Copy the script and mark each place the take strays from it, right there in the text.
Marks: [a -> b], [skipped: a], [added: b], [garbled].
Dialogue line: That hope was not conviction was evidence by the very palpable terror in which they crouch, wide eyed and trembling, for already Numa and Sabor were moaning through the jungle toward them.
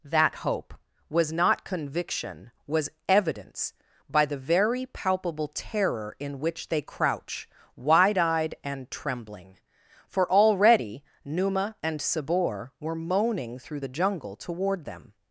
That hope was not conviction was evidence by the very palpable terror in which they crouch, wide eyed and trembling, for already Numa and Sabor were moaning through the jungle toward them.